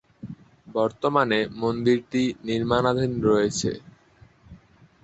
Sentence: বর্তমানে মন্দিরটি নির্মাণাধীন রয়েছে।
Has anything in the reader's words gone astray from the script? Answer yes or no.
no